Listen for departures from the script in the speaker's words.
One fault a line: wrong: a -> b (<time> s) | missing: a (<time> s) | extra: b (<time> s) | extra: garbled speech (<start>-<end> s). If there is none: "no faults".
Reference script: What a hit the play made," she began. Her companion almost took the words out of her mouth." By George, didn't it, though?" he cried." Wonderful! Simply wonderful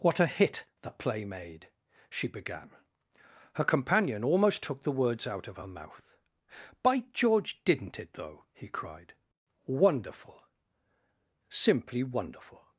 no faults